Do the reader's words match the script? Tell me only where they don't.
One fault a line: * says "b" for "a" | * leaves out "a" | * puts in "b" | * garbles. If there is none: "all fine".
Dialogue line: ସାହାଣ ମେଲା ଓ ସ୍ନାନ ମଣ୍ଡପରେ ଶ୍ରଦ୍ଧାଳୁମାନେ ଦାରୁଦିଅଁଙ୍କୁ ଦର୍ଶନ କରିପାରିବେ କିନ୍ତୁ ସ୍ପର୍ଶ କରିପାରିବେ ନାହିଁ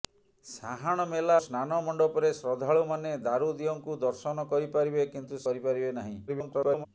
* leaves out "ଓ"
* leaves out "ସ୍ପର୍ଶ"
* garbles